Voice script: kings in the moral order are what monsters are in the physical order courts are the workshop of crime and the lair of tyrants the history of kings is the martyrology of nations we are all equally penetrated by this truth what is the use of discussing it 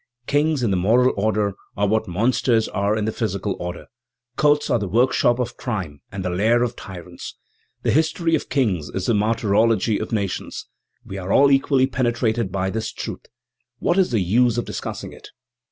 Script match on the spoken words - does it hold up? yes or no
yes